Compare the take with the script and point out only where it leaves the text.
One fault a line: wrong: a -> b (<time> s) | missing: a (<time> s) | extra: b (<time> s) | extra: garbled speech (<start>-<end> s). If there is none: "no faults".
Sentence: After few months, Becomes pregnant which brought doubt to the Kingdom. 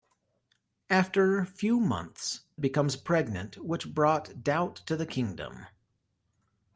no faults